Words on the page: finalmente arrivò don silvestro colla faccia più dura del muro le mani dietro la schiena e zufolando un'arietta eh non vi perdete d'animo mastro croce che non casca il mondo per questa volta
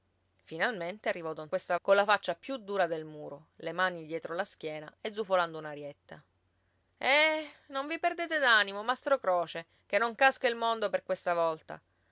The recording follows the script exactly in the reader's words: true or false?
false